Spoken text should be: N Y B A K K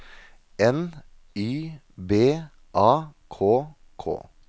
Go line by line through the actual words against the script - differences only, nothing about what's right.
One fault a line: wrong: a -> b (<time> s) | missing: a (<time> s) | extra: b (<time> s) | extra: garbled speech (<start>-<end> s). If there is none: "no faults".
no faults